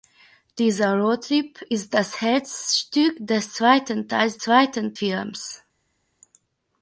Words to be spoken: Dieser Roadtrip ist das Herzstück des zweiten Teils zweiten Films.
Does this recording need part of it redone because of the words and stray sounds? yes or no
no